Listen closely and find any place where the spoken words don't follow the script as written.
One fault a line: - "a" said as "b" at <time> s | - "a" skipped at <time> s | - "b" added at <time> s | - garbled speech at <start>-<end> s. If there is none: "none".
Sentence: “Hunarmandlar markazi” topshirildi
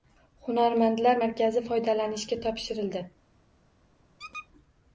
- "foydalanishga" added at 1.7 s